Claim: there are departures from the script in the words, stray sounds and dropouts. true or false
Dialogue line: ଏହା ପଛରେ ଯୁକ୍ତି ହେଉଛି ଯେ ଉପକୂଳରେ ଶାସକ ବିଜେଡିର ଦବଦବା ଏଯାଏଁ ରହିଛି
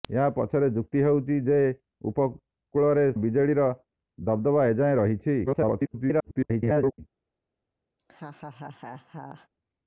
true